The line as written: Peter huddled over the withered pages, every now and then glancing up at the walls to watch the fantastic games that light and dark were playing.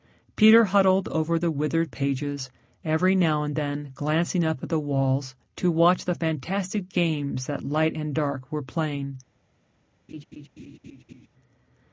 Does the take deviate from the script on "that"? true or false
false